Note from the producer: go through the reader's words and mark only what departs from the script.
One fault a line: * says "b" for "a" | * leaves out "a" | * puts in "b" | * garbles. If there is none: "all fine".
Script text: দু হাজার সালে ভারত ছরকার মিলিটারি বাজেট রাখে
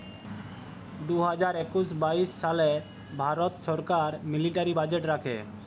* puts in "একুশ বাইশ"